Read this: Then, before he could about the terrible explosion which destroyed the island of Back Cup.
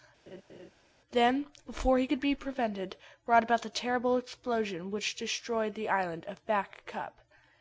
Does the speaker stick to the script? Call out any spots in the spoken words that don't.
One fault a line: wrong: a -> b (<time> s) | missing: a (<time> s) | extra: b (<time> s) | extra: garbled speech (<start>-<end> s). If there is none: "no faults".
extra: be prevented brought (2.2 s)